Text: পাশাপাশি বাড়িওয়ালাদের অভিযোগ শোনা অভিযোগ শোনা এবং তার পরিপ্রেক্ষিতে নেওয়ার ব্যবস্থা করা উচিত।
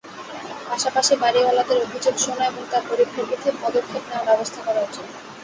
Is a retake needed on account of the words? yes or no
yes